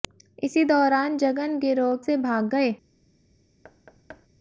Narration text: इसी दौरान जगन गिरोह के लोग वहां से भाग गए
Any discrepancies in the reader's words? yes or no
yes